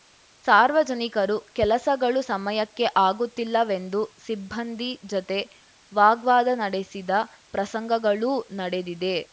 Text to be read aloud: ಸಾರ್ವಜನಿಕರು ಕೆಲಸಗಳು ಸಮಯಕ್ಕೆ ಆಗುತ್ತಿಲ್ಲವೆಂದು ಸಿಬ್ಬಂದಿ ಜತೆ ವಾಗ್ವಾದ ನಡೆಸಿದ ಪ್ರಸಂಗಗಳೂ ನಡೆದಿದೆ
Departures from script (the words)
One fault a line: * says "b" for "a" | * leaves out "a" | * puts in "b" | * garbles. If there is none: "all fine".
all fine